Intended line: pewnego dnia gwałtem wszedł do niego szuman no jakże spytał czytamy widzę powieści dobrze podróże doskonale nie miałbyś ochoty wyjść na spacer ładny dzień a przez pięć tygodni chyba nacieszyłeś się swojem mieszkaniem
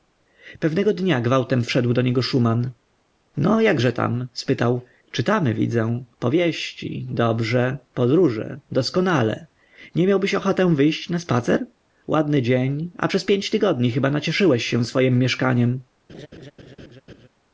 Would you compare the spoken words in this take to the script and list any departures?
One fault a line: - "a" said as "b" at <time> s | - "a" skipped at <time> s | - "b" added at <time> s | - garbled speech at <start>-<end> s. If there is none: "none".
- "tam" added at 3.9 s